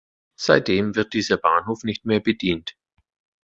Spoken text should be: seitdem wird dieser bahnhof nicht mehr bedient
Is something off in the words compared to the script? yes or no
no